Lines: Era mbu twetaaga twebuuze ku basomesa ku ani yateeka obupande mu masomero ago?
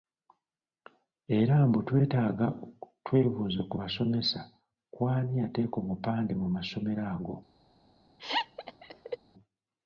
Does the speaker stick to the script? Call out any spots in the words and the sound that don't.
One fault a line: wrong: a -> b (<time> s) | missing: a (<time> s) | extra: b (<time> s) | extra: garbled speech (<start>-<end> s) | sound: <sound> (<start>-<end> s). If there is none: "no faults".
sound: laugh (8.2-9.2 s)